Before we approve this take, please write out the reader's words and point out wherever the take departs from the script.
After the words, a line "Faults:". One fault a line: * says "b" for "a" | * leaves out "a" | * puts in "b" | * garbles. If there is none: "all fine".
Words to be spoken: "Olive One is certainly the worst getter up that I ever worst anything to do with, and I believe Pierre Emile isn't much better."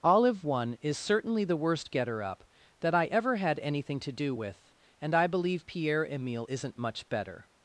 "Olive One is certainly the worst getter up that I ever had anything to do with, and I believe Pierre Emile isn't much better."
Faults:
* says "had" for "worst"